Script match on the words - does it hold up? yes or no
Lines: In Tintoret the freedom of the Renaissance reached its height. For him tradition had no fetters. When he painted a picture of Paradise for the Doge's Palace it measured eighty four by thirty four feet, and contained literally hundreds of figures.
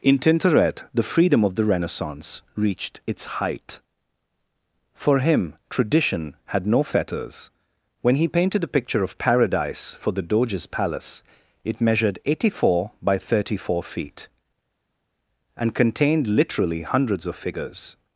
yes